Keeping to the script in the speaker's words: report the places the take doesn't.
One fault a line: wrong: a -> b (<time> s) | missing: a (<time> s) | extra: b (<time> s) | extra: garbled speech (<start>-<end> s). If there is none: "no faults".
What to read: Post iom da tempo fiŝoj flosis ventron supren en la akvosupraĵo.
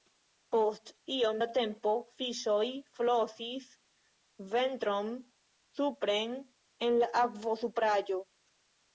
no faults